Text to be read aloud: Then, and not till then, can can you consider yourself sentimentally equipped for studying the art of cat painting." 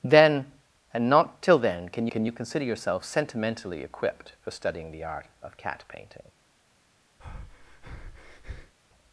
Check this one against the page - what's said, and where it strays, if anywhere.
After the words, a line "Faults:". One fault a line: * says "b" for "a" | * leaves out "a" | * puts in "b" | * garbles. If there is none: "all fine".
Then, and not till then, can can you consider yourself sentimentally equipped for studying the art of cat painting."
Faults:
all fine